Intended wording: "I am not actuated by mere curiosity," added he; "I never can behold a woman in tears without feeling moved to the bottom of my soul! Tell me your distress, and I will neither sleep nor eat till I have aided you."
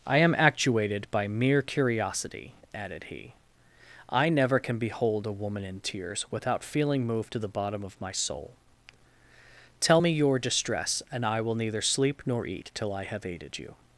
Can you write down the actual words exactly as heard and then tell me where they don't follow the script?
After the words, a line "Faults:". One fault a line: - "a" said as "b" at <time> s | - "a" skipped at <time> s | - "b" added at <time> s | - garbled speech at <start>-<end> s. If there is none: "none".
"I am actuated by mere curiosity," added he; "I never can behold a woman in tears without feeling moved to the bottom of my soul! Tell me your distress, and I will neither sleep nor eat till I have aided you."
Faults:
- "not" skipped at 0.3 s